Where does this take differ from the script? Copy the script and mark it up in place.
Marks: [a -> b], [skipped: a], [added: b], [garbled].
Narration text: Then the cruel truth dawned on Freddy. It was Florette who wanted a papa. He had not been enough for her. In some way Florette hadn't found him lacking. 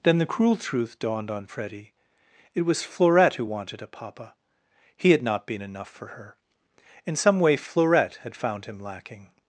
Then the cruel truth dawned on Freddy. It was Florette who wanted a papa. He had not been enough for her. In some way Florette [hadn't -> had] found him lacking.